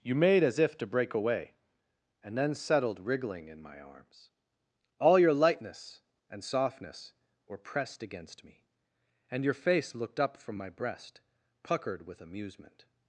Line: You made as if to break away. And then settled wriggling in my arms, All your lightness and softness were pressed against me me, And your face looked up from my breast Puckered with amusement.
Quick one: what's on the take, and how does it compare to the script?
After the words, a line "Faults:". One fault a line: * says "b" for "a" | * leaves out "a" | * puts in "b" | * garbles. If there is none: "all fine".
You made as if to break away. And then settled wriggling in my arms, All your lightness and softness were pressed against me, And your face looked up from my breast Puckered with amusement.
Faults:
* leaves out "me"